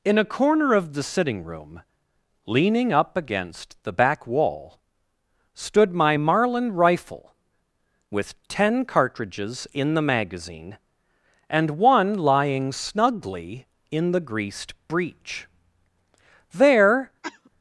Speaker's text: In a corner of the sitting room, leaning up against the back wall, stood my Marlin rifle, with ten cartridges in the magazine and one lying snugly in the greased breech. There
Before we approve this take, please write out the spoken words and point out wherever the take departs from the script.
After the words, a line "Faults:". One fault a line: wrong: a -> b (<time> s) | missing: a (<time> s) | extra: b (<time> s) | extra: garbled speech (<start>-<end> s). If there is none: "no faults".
In a corner of the sitting room, leaning up against the back wall, stood my Marlin rifle, with ten cartridges in the magazine and one lying snugly in the greased breech. There
Faults:
no faults